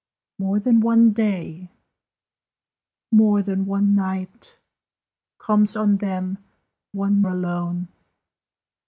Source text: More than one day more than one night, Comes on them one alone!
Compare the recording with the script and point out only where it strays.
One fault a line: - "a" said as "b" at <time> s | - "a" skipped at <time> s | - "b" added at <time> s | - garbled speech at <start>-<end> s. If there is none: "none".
none